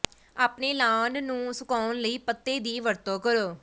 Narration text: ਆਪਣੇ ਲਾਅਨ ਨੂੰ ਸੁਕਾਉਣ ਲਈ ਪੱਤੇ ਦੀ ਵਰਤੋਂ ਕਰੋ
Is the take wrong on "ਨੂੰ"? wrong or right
right